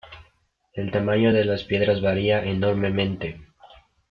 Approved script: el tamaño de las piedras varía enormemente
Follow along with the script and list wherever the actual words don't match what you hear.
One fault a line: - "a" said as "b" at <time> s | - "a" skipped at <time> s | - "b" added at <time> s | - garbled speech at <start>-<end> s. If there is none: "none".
none